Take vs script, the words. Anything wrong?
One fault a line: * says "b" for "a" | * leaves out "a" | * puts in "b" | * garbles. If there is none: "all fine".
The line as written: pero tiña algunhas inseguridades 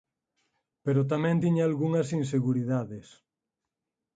* puts in "tamén"